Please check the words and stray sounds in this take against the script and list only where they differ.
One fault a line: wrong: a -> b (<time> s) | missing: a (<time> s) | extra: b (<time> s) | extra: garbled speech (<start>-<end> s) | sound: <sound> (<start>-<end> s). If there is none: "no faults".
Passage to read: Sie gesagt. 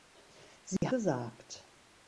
sound: dropout (0.8-0.8 s)